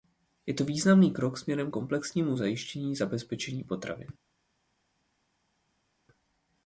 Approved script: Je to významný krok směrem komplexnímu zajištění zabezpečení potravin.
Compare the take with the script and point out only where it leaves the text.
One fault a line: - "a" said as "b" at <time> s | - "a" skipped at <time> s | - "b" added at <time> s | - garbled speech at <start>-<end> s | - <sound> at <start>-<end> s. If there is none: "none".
none